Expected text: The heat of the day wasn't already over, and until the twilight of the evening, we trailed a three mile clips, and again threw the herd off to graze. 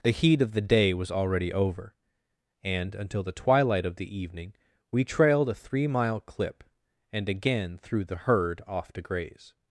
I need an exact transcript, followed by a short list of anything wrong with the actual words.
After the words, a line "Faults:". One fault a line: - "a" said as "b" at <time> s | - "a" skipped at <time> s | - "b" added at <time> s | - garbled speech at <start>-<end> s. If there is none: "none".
The heat of the day was already over, and until the twilight of the evening, we trailed a three mile clip, and again threw the herd off to graze.
Faults:
- "wasn't" said as "was" at 0.9 s
- "clips" said as "clip" at 6.2 s